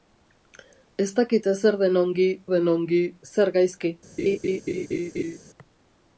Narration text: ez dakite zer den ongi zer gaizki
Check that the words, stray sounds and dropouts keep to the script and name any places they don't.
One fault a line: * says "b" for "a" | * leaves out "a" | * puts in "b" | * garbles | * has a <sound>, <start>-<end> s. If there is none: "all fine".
* puts in "den ongi"
* has a laugh, 4.2-5.4 s